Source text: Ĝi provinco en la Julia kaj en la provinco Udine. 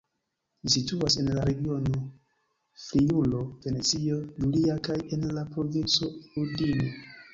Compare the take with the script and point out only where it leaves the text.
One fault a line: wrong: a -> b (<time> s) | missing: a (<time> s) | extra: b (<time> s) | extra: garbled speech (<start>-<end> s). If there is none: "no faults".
wrong: provinco -> situas (0.8 s)
extra: regiono Friulo Venecio (1.5 s)